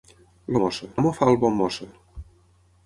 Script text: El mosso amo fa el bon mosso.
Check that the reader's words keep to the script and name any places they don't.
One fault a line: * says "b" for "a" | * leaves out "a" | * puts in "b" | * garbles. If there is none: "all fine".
all fine